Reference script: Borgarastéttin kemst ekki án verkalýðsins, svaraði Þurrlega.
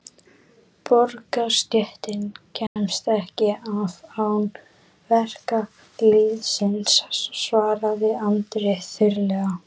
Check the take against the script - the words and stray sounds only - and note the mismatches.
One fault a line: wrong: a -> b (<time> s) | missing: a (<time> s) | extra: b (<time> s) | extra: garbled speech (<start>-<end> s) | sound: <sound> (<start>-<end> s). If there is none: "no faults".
sound: dropout (2.7-2.8 s)
extra: af (3.8 s)
extra: Andri (8.3 s)